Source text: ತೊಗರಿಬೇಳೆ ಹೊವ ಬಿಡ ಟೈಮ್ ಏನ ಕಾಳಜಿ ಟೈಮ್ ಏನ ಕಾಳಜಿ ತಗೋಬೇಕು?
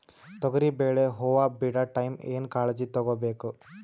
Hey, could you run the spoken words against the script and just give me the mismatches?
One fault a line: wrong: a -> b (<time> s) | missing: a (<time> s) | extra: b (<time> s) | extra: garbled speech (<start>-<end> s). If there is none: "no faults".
missing: ಟೈಮ್ ಏನ ಕಾಳಜಿ (2.9 s)